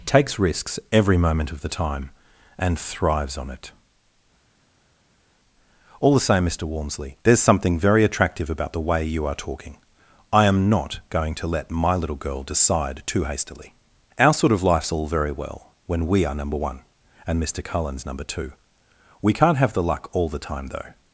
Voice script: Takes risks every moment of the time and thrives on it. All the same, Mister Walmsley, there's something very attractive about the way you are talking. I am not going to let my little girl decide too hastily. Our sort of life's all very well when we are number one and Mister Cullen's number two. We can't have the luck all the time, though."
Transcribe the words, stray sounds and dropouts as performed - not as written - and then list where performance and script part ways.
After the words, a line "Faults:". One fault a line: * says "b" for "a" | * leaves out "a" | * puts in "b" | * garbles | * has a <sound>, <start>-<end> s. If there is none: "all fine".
Takes risks every moment of the time and thrives on it. All the same, Mister Walmsley, there's something very attractive about the way you are talking. I am not going to let my little girl decide too hastily. Our sort of life's all very well when we are number one and Mister Cullen's number two. We can't have the luck all the time, though."
Faults:
all fine